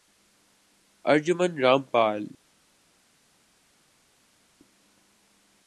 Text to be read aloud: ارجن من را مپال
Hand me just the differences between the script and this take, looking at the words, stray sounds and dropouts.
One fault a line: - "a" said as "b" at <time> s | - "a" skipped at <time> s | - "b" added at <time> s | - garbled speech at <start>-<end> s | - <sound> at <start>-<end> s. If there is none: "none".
none